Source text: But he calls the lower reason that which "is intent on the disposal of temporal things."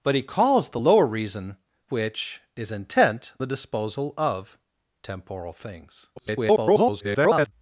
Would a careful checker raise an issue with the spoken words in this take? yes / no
yes